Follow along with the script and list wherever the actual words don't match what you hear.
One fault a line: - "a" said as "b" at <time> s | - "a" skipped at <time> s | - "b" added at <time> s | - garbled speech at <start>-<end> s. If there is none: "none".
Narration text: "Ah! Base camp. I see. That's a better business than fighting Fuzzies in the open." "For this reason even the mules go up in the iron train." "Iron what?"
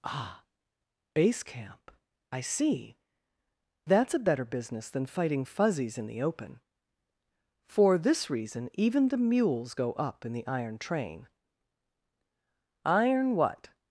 none